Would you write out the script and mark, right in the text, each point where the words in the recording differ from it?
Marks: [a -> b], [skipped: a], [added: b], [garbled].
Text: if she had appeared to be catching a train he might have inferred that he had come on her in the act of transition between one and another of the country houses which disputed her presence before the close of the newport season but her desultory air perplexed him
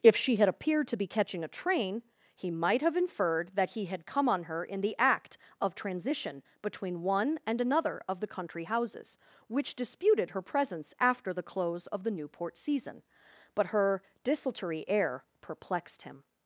if she had appeared to be catching a train he might have inferred that he had come on her in the act of transition between one and another of the country houses which disputed her presence [before -> after] the close of the newport season but her desultory air perplexed him